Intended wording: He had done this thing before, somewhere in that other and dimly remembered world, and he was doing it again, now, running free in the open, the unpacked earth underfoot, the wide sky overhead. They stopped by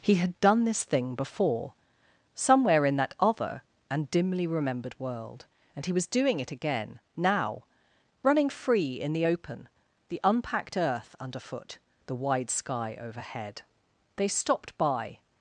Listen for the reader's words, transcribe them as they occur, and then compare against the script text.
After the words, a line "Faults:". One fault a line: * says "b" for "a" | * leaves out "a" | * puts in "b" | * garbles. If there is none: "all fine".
He had done this thing before, somewhere in that other and dimly remembered world, and he was doing it again, now, running free in the open, the unpacked earth underfoot, the wide sky overhead. They stopped by
Faults:
all fine